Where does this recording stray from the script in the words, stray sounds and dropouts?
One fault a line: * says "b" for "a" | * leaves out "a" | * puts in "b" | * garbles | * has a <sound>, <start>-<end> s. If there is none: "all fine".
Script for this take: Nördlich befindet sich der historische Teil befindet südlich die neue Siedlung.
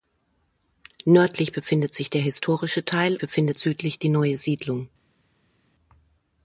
all fine